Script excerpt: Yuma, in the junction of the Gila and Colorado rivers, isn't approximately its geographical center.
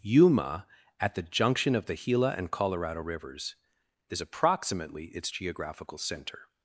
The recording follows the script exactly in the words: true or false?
false